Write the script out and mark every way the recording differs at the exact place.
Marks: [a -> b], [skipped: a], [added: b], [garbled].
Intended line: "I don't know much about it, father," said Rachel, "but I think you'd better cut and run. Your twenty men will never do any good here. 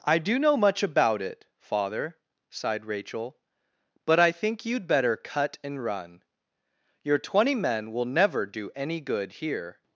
"I [don't -> do] know much about it, father," [said -> sighed] Rachel, "but I think you'd better cut and run. Your twenty men will never do any good here.